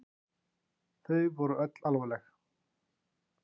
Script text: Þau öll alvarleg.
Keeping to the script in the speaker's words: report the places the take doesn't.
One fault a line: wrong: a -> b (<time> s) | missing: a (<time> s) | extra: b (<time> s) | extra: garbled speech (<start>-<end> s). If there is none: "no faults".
extra: voru (1.4 s)